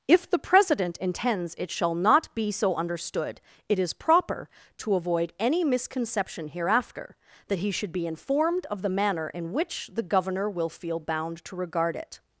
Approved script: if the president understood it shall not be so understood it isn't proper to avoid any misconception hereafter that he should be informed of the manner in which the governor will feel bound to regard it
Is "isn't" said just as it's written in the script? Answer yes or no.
no